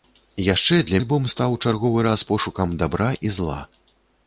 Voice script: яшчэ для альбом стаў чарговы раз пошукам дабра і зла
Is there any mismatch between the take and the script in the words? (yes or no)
no